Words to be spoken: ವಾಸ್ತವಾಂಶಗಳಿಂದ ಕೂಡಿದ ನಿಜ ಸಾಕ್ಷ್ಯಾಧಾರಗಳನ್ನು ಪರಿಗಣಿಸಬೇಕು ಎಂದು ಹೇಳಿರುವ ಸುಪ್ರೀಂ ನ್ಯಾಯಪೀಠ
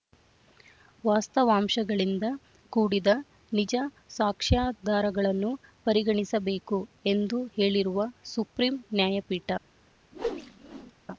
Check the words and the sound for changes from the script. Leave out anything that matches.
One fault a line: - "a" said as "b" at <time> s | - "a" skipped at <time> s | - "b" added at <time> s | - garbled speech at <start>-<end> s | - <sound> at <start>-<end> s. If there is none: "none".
- whoosh at 10.1-10.9 s